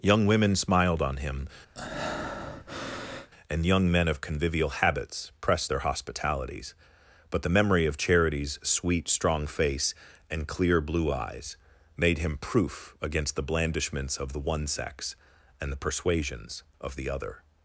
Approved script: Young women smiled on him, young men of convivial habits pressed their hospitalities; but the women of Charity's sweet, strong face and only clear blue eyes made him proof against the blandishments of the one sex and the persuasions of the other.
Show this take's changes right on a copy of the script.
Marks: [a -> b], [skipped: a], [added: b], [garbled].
Young women smiled on him, [added: and] young men of convivial habits pressed their hospitalities; but the [women -> memory] of Charity's sweet, strong face and [skipped: only] clear blue eyes made him proof against the blandishments of the one sex and the persuasions of the other.